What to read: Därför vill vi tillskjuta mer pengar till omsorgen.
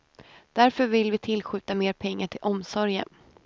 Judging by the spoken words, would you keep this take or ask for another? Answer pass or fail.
pass